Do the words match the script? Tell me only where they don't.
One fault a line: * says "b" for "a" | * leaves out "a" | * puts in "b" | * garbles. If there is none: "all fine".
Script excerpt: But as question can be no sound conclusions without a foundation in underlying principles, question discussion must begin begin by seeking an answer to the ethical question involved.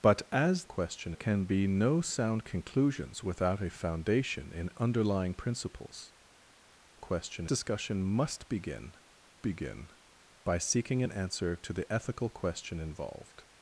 all fine